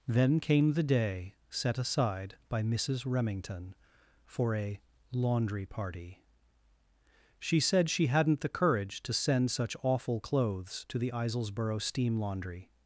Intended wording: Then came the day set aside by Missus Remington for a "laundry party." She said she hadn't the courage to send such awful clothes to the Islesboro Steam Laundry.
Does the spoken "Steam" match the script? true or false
true